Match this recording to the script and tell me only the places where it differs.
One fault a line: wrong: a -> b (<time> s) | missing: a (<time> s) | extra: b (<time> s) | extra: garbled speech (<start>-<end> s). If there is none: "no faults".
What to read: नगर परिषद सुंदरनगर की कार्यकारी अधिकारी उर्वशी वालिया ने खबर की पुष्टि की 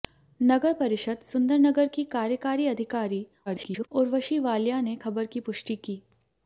extra: garbled speech (3.5-3.9 s)